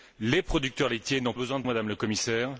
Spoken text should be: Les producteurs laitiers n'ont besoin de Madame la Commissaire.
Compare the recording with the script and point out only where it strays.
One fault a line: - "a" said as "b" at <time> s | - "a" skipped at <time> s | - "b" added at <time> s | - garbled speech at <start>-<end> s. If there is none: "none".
none